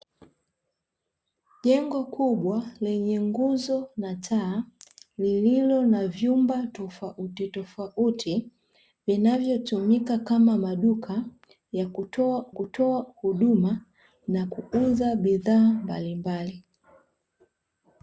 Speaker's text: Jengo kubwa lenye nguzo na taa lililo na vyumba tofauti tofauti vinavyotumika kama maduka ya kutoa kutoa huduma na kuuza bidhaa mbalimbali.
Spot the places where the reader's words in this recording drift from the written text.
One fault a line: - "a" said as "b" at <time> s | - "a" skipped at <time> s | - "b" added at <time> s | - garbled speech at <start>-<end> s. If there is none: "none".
none